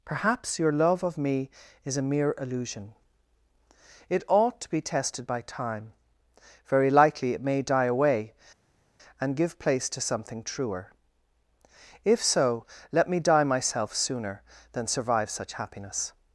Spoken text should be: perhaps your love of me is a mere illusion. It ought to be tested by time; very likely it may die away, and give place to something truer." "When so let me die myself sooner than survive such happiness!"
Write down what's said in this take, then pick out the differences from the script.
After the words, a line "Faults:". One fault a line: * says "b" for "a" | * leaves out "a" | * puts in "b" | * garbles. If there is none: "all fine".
perhaps your love of me is a mere illusion. It ought to be tested by time; very likely it may die away, and give place to something truer." "If so let me die myself sooner than survive such happiness!"
Faults:
* says "If" for "When"